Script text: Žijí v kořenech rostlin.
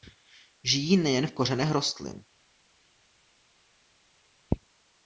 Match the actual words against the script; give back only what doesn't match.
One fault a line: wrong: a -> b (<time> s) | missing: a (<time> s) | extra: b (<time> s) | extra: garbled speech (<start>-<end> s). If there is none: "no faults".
extra: nejen (1.0 s)